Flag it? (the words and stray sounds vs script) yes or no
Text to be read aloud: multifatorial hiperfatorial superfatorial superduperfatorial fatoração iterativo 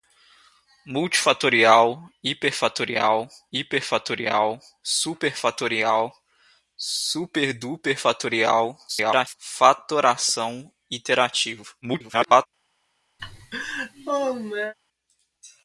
yes